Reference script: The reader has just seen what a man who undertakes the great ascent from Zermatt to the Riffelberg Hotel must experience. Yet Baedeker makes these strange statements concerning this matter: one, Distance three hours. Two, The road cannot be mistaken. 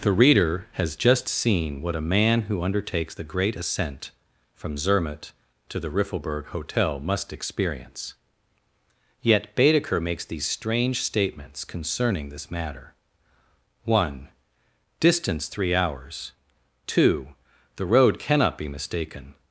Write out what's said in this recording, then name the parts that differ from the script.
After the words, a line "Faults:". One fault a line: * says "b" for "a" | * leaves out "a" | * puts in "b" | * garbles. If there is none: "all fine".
The reader has just seen what a man who undertakes the great ascent from Zermatt to the Riffelberg Hotel must experience. Yet Baedeker makes these strange statements concerning this matter: one, Distance three hours. Two, The road cannot be mistaken.
Faults:
all fine